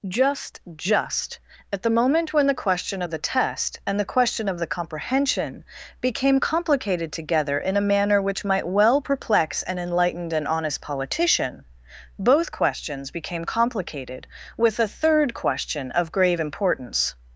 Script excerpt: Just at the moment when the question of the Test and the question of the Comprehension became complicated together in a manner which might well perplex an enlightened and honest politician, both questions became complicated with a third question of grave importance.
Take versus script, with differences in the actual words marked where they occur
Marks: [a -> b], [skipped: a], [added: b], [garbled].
Just [added: just] at the moment when the question of the Test and the question of the Comprehension became complicated together in a manner which might well perplex an enlightened and honest politician, both questions became complicated with a third question of grave importance.